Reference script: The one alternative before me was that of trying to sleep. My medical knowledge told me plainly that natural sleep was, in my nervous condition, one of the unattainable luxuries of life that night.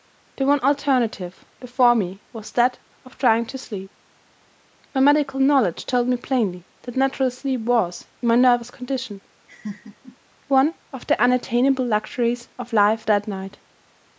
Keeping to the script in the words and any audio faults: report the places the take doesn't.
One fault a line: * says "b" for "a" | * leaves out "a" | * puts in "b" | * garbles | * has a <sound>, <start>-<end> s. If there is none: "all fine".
* has a laugh, 9.5-10.2 s